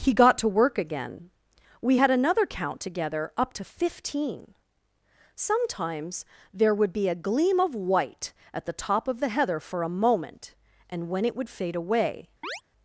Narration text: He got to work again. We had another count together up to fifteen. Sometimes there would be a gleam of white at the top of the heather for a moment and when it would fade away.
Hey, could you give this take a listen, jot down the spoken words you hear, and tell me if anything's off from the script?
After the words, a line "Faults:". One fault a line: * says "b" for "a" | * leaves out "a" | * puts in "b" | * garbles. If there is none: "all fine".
He got to work again. We had another count together up to fifteen. Sometimes there would be a gleam of white at the top of the heather for a moment and when it would fade away.
Faults:
all fine